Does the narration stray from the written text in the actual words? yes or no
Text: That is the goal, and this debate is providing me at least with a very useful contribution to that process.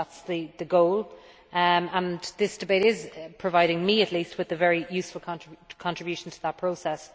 no